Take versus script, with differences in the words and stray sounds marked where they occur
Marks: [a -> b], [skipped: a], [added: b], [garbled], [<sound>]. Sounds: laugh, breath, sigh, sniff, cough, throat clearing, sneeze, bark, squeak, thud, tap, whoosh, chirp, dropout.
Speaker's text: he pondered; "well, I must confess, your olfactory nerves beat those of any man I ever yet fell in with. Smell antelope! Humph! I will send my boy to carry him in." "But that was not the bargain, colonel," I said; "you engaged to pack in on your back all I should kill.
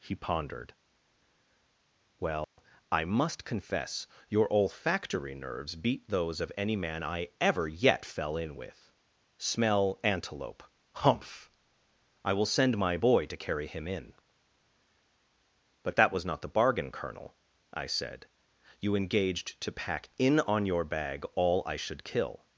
he pondered; "well, [dropout] I must confess, your olfactory nerves beat those of any man I ever yet fell in with. Smell antelope! Humph! I will send my boy to carry him in." "But that was not the bargain, colonel," I said; "you engaged to pack in on your [back -> bag] all I should kill.